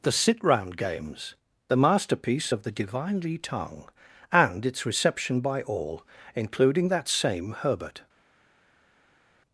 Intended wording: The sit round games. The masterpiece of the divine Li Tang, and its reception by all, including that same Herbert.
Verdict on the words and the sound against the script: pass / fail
pass